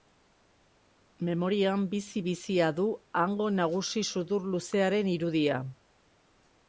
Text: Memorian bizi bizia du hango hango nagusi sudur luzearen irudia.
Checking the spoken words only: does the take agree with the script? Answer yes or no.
no